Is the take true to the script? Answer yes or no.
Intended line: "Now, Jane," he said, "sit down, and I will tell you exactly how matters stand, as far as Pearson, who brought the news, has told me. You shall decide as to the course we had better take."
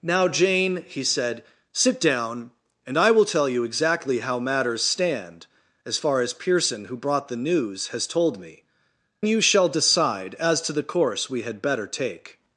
yes